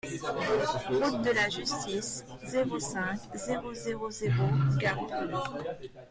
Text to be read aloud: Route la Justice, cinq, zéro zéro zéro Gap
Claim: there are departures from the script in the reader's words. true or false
true